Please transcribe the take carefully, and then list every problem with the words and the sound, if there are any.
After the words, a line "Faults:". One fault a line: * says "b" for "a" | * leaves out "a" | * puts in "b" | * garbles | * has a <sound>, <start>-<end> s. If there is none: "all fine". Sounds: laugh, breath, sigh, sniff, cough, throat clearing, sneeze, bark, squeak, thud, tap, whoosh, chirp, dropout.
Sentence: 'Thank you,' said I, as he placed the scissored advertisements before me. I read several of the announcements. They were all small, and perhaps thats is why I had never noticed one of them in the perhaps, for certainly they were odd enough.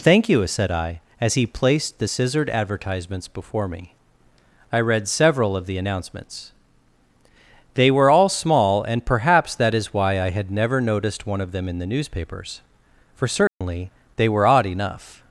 'Thank you,' said I, as he placed the scissored advertisements before me. I read several of the announcements. They were all small, and perhaps that is why I had never noticed one of them in the newspapers, for certainly they were odd enough.
Faults:
* says "that" for "thats"
* says "newspapers" for "perhaps"
* has a dropout, 13.5-13.6 s